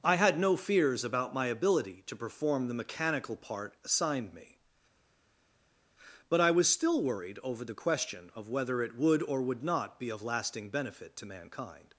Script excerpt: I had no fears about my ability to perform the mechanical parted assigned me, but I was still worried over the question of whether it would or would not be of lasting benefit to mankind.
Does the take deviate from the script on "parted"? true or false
true